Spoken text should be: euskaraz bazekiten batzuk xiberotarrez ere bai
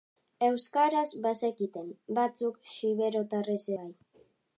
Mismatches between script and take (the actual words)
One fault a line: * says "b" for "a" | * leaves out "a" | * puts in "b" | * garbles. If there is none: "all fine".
* leaves out "ere"